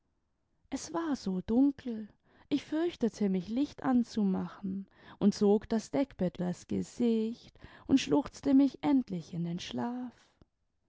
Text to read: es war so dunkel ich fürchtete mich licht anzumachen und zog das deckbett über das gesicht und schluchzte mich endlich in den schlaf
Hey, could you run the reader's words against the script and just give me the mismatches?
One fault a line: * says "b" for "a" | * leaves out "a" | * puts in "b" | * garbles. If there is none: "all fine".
* leaves out "über"